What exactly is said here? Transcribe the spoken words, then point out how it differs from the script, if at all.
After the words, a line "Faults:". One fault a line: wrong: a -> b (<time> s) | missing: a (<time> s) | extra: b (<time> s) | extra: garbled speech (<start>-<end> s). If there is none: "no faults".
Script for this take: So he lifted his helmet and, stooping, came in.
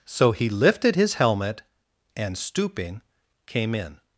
So he lifted his helmet and, stooping, came in.
Faults:
no faults